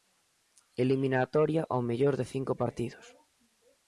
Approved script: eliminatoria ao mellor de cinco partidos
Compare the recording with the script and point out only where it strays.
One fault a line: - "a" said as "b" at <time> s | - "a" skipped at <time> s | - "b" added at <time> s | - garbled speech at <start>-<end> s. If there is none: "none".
none